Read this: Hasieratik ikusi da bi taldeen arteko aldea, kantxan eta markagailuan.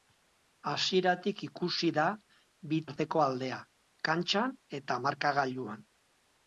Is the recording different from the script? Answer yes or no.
yes